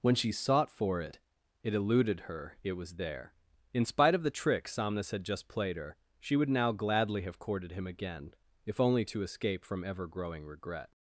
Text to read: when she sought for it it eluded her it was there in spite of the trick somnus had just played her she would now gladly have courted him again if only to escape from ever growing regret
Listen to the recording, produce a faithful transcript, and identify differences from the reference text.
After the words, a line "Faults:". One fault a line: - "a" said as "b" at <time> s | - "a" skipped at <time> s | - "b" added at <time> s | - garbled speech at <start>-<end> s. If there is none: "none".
when she sought for it it eluded her it was there in spite of the trick somnus had just played her she would now gladly have courted him again if only to escape from ever growing regret
Faults:
none